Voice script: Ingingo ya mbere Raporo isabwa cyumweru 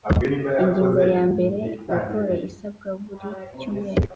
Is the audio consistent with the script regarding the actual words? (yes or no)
no